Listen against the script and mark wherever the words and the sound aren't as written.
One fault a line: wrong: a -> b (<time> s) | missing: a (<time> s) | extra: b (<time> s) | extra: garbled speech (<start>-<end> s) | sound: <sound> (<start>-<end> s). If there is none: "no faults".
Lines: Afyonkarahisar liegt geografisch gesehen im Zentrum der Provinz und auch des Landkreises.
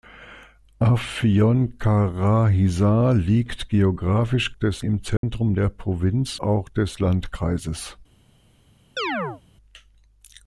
wrong: gesehen -> des (4.5 s)
sound: dropout (5.2-5.2 s)
missing: und (6.4 s)
sound: chirp (9.0-9.4 s)